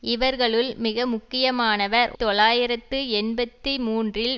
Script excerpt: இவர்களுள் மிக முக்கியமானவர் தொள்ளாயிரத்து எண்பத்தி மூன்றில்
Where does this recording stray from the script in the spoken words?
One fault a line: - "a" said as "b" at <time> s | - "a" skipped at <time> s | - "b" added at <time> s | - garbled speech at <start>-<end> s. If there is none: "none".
none